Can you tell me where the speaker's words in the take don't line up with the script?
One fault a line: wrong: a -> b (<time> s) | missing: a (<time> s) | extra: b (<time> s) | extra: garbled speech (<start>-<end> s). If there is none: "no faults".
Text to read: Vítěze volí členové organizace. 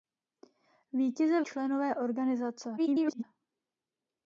missing: volí (1.4 s)
extra: garbled speech (2.8-3.2 s)